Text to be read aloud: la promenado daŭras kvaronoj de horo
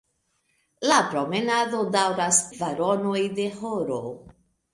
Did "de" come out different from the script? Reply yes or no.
no